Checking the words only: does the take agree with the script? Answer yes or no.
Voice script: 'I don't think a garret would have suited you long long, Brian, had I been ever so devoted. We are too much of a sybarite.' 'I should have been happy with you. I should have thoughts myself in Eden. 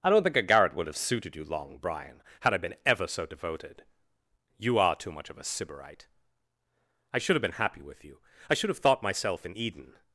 no